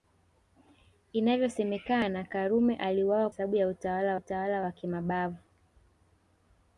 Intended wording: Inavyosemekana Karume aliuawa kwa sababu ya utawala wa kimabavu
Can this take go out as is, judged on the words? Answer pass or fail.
fail